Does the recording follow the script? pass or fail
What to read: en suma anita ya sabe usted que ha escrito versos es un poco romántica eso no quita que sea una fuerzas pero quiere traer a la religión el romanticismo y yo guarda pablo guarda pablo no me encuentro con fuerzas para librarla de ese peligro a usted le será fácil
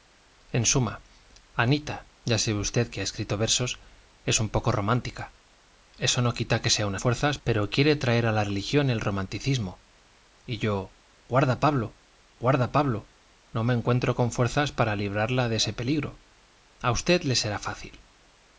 pass